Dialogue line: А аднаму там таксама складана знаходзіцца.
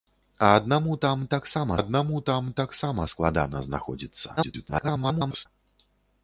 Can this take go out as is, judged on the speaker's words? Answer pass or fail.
fail